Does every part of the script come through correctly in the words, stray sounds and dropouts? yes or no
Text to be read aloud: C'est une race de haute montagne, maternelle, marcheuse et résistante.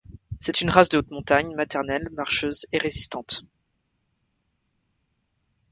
yes